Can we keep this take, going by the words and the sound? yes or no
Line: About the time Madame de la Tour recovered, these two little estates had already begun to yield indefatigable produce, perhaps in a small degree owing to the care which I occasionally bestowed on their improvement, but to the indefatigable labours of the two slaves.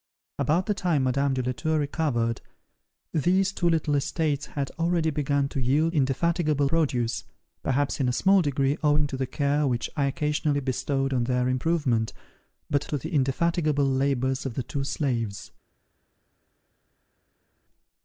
yes